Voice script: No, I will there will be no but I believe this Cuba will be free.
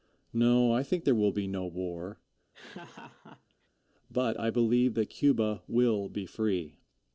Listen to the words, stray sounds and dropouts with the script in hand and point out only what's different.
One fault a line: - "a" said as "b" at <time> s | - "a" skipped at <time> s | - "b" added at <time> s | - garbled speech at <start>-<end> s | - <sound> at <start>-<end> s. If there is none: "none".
- "will" said as "think" at 0.8 s
- "war" added at 1.7 s
- laugh at 2.5-3.7 s
- "this" said as "that" at 4.9 s